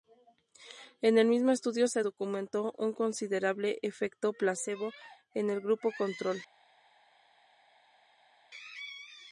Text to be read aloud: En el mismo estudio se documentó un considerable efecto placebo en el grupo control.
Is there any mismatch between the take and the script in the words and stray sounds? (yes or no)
no